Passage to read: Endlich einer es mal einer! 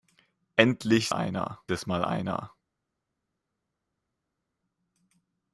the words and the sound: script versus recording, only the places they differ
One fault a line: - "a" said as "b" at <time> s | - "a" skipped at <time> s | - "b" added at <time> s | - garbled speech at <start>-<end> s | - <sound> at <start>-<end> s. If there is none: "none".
none